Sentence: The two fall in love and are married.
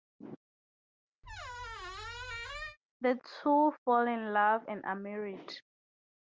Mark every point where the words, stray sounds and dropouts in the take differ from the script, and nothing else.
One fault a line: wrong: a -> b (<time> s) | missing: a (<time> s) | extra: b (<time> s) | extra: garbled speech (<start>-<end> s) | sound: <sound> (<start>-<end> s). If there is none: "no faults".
sound: squeak (1.2-2.8 s)